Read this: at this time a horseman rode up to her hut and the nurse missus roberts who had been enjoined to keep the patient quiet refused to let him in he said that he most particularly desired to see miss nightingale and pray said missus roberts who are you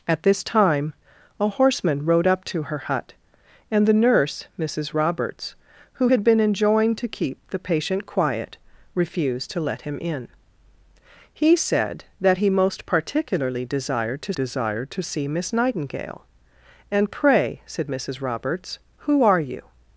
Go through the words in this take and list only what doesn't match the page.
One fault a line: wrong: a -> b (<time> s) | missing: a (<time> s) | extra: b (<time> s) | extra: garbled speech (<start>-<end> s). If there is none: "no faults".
extra: desired to (14.3 s)